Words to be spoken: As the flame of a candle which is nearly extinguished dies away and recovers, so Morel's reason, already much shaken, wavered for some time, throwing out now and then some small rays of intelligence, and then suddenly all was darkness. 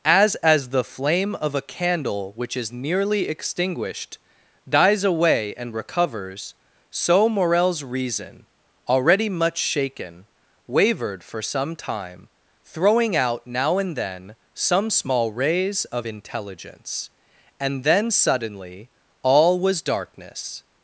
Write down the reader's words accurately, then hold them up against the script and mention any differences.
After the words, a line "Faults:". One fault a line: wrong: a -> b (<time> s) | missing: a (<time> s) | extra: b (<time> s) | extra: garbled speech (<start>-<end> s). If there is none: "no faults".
As as the flame of a candle which is nearly extinguished dies away and recovers, so Morel's reason, already much shaken, wavered for some time, throwing out now and then some small rays of intelligence, and then suddenly all was darkness.
Faults:
extra: as (0.3 s)